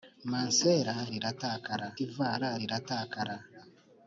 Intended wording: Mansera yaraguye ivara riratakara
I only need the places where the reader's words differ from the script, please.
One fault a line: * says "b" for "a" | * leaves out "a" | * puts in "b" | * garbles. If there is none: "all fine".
* says "riratakara" for "yaraguye"